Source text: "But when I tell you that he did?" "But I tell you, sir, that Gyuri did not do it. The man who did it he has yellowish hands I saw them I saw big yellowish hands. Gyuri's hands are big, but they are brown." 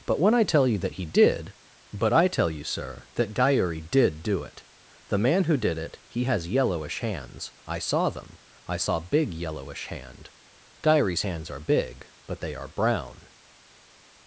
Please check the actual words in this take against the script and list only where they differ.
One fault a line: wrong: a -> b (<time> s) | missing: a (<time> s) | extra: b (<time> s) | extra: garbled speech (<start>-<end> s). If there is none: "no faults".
missing: not (4.2 s)
wrong: hands -> hand (9.9 s)